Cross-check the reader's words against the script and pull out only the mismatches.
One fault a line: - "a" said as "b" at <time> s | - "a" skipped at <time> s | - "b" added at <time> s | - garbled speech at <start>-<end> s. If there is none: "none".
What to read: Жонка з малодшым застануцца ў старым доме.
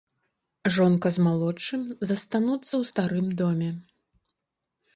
none